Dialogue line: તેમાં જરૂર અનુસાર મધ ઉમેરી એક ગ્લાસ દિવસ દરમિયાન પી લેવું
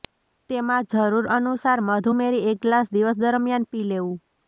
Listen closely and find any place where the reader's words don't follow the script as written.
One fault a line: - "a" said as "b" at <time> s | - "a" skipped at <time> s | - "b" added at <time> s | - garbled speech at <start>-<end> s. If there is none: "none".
none